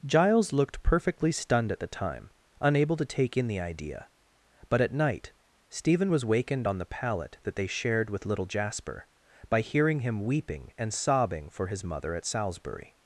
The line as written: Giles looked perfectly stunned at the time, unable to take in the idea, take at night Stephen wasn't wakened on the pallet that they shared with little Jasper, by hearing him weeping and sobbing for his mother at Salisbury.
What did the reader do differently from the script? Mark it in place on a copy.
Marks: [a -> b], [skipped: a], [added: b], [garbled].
Giles looked perfectly stunned at the time, unable to take in the idea, [take -> but] at night Stephen [wasn't -> was] wakened on the pallet that they shared with little Jasper, by hearing him weeping and sobbing for his mother at Salisbury.